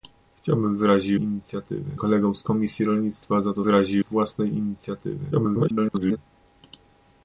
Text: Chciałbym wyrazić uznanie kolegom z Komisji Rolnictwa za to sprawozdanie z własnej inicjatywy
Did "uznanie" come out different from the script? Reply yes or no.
yes